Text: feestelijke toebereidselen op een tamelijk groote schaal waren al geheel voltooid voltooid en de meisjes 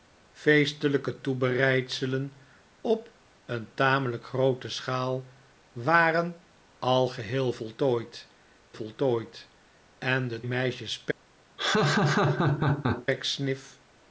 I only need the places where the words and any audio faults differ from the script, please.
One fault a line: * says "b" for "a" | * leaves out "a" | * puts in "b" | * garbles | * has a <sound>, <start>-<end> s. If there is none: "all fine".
* has a laugh, 11.6-13.1 s